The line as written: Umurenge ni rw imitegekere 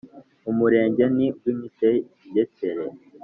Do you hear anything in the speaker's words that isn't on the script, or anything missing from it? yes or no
no